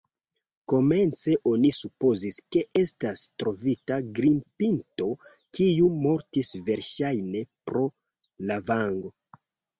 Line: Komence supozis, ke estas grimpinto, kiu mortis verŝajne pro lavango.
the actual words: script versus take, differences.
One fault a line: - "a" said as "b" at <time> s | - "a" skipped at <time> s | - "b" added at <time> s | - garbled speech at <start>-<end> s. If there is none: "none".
- "oni" added at 1.5 s
- "trovita" added at 3.4 s